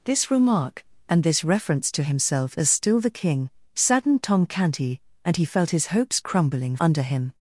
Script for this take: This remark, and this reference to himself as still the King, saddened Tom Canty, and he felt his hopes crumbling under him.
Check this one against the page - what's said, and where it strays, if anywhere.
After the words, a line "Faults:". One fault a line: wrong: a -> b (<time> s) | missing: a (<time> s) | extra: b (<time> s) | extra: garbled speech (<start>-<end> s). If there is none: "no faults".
This remark, and this reference to himself as still the King, saddened Tom Canty, and he felt his hopes crumbling under him.
Faults:
no faults